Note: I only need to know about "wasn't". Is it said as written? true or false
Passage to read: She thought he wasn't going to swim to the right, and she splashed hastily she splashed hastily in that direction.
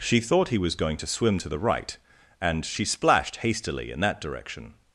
false